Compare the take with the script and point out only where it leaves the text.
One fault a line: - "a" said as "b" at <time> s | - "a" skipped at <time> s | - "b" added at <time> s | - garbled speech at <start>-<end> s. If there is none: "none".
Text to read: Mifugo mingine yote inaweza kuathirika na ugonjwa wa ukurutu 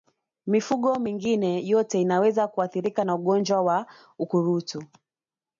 none